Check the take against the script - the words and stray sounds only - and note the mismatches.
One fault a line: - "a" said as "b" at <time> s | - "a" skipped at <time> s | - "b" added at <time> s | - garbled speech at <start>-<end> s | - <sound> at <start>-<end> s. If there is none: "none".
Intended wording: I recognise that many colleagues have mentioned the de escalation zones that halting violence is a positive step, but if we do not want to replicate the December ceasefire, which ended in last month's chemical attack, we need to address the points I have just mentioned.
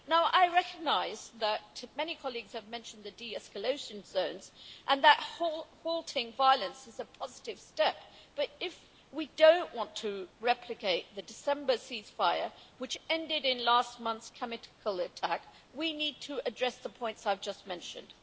- "and" added at 4.9 s